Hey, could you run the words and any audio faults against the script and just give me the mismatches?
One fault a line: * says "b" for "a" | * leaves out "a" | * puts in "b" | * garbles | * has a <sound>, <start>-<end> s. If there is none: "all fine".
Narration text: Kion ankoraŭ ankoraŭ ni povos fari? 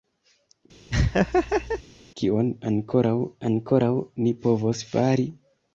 * has a laugh, 0.9-1.8 s